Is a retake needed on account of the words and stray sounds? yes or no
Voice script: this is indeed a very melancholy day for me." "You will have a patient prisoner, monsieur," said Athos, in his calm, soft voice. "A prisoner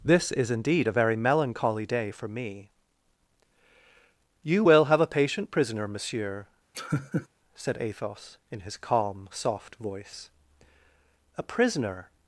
yes